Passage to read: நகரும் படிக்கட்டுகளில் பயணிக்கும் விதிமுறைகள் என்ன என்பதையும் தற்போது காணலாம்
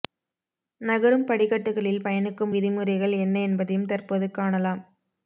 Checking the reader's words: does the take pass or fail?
pass